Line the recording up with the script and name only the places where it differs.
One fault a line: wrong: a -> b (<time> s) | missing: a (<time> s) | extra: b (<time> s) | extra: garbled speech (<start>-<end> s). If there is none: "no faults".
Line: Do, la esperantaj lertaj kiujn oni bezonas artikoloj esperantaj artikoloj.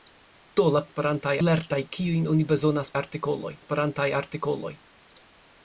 no faults